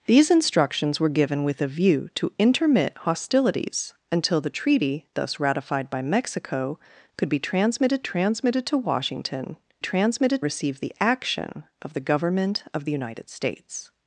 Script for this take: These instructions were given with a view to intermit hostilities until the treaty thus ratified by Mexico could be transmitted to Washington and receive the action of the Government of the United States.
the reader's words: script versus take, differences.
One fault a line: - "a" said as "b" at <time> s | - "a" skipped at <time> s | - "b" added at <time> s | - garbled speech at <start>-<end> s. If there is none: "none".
- "transmitted" added at 8.0 s
- "and" said as "transmitted" at 9.8 s